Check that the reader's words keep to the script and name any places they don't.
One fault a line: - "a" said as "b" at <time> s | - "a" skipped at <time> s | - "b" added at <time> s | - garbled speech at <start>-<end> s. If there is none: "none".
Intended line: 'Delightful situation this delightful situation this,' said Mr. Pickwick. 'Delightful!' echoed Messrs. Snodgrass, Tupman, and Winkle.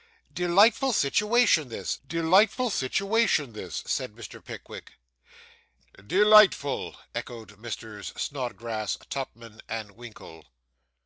none